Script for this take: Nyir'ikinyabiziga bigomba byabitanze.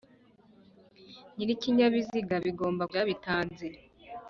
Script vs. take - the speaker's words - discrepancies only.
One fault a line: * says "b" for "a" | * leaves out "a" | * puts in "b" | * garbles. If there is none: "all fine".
all fine